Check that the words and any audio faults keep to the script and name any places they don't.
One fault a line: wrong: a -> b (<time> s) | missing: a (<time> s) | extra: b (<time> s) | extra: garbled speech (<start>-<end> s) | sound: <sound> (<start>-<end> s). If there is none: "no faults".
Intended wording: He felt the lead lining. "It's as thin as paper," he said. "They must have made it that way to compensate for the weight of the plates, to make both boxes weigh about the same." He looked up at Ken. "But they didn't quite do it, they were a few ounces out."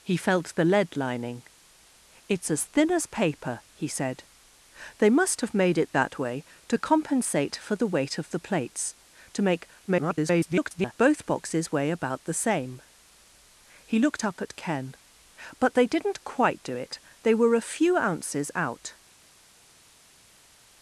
extra: garbled speech (9.9-10.9 s)